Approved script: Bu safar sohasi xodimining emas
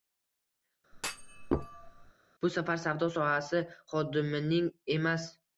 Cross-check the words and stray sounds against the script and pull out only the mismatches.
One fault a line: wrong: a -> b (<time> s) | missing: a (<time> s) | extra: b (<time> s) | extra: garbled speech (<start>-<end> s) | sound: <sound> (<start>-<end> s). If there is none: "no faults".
sound: thud (0.9-2.1 s)
extra: savdo (2.9 s)